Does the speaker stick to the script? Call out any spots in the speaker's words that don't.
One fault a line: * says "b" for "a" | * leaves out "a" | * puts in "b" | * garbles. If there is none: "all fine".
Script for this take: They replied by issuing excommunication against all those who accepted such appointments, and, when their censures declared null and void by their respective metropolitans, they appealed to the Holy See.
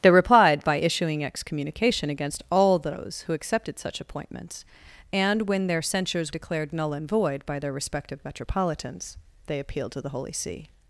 all fine